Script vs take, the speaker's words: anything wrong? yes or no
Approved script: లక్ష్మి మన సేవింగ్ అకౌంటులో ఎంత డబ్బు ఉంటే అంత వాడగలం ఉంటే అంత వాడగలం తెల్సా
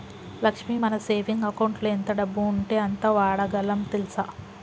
yes